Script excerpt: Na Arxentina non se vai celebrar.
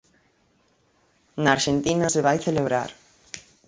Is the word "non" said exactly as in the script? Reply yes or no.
no